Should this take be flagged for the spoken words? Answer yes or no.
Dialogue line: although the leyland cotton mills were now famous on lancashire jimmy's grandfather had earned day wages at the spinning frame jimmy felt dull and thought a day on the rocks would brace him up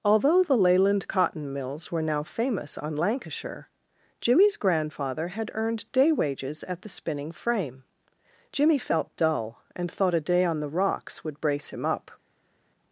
no